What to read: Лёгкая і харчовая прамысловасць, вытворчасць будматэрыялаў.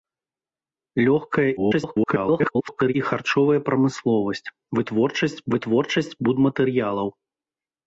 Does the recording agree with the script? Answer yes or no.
no